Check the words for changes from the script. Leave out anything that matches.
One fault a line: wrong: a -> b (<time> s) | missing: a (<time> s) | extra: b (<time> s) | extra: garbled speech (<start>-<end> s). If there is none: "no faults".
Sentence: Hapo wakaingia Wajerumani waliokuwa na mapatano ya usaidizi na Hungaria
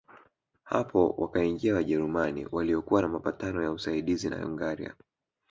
no faults